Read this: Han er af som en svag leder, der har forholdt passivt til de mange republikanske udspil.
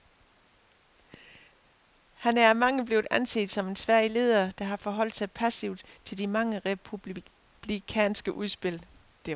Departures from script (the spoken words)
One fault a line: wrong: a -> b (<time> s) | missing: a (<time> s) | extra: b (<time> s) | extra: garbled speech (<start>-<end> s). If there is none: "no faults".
extra: mange blevet anset (2.5 s)
extra: sig (5.1 s)